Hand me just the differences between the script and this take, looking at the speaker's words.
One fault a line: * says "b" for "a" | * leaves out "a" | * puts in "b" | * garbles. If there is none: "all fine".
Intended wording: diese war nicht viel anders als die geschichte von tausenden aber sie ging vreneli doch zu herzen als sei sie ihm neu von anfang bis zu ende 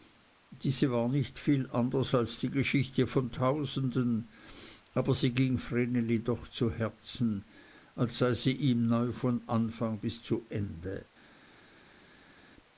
all fine